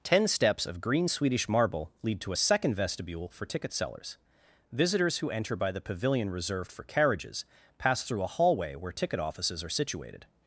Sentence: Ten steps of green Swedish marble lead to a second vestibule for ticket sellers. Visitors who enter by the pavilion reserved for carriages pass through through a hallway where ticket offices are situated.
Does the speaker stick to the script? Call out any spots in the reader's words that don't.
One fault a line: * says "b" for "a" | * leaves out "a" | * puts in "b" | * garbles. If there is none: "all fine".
* leaves out "through"